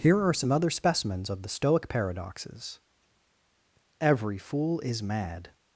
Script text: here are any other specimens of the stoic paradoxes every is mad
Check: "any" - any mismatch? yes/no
yes